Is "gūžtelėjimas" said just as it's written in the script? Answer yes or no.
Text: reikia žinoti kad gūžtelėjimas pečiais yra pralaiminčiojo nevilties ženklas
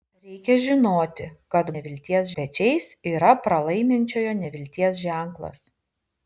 no